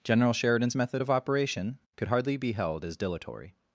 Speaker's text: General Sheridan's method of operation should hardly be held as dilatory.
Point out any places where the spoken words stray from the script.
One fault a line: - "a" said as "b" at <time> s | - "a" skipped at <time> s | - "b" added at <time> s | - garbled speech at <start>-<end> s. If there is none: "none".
- "should" said as "could" at 2.0 s